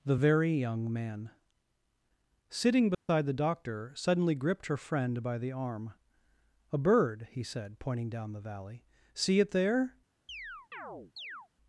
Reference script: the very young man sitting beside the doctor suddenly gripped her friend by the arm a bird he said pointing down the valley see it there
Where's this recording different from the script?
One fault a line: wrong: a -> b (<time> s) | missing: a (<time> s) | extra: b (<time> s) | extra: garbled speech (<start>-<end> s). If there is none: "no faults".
no faults